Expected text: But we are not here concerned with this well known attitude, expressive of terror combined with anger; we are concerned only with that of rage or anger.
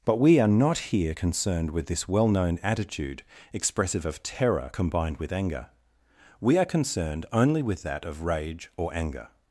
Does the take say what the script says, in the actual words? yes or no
yes